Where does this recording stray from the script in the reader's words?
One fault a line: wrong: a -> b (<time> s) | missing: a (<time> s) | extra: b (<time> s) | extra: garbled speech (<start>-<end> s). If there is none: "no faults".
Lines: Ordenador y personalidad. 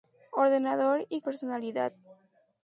no faults